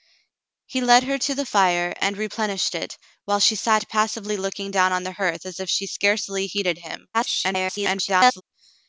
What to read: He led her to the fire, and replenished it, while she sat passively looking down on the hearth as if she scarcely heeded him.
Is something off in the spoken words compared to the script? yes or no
yes